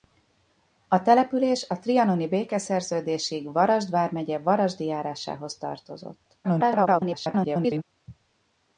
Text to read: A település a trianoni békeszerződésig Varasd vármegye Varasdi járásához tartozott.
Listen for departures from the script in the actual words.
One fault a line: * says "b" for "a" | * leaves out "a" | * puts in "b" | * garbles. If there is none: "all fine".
* garbles